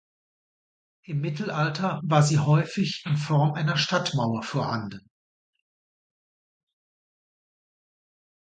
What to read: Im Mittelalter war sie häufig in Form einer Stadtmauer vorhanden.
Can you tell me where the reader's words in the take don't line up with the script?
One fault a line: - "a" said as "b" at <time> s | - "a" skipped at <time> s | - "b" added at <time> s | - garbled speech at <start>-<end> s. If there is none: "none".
none